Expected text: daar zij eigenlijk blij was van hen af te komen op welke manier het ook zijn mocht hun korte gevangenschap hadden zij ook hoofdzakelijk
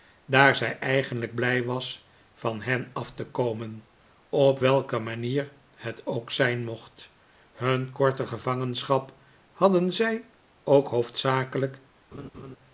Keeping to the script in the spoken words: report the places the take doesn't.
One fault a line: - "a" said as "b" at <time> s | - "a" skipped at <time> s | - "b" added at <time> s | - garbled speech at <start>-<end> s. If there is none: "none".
none